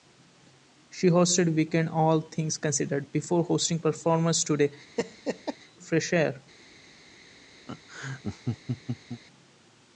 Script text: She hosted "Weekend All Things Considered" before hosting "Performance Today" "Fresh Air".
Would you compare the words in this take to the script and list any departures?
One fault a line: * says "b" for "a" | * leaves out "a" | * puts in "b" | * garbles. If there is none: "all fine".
all fine